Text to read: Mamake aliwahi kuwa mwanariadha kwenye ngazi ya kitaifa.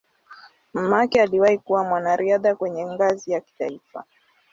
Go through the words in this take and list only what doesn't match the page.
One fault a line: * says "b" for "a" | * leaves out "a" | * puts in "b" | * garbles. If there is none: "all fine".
all fine